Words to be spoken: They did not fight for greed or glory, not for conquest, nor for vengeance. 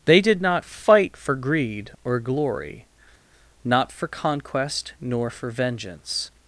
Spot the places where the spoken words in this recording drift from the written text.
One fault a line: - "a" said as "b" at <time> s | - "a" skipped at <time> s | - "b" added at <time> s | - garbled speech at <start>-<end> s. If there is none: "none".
none